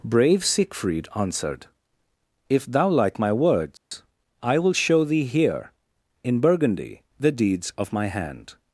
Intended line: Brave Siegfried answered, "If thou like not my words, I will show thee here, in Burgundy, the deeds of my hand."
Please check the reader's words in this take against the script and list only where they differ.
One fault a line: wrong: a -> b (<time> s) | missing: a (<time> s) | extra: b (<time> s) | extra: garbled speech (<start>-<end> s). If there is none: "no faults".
missing: not (3.2 s)